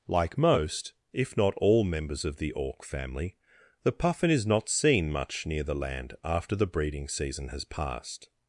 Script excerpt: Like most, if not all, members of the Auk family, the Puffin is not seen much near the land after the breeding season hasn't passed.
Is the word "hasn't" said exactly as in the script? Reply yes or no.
no